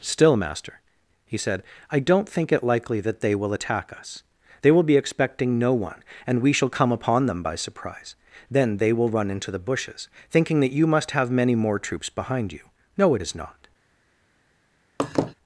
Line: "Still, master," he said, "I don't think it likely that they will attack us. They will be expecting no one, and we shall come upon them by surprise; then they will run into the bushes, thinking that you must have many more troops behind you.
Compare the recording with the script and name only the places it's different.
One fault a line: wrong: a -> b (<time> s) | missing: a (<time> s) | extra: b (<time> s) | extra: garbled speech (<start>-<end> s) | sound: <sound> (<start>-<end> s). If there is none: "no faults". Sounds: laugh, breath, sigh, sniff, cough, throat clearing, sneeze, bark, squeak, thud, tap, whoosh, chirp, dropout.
extra: No it is not (12.9 s)
sound: laugh (15.0-15.3 s)